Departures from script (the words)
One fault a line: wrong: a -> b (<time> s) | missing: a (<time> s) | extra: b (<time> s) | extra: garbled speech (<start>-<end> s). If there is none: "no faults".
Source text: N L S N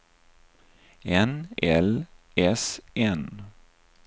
no faults